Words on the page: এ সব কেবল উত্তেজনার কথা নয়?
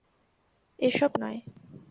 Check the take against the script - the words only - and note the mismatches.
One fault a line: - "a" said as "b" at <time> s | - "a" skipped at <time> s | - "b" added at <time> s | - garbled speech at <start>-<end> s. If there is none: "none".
- "কেবল উত্তেজনার কথা" skipped at 1.1 s